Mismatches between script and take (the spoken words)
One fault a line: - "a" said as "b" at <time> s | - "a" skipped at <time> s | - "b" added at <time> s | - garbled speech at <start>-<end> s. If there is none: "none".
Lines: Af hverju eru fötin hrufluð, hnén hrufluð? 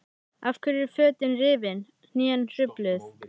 - "hrufluð" said as "rifin" at 1.4 s